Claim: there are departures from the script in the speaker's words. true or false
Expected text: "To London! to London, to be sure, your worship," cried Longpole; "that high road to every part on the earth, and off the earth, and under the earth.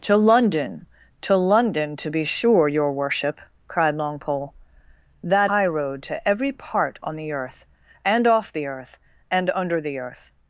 false